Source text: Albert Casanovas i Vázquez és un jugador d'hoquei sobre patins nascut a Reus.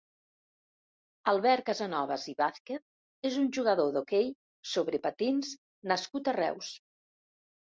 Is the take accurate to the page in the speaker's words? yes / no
yes